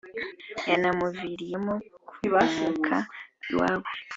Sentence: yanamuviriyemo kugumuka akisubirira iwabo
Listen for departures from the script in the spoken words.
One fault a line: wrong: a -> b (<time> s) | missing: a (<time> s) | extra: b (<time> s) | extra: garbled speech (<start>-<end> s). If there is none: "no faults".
missing: akisubirira (3.0 s)